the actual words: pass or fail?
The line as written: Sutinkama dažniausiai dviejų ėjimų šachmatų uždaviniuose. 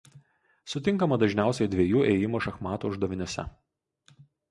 pass